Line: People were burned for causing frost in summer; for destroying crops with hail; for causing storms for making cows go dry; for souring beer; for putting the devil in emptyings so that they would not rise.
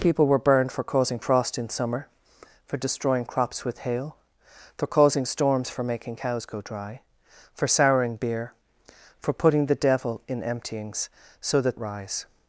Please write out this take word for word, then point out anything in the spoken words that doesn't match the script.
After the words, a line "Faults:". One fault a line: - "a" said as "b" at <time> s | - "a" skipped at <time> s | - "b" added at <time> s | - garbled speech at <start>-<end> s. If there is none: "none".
People were burned for causing frost in summer; for destroying crops with hail; for causing storms for making cows go dry; for souring beer; for putting the devil in emptyings so that rise.
Faults:
- "they would not" skipped at 11.8 s